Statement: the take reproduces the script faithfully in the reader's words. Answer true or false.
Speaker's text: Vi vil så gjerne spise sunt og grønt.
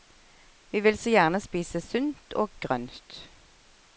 true